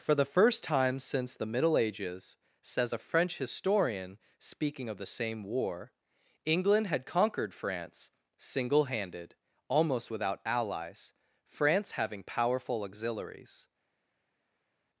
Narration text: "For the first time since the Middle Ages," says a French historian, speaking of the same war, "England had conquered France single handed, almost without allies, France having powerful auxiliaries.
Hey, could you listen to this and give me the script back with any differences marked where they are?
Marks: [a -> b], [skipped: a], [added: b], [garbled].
"For the first time since the Middle Ages," says a French historian, speaking of the same war, "England had conquered France single handed, almost without allies, France having powerful auxiliaries.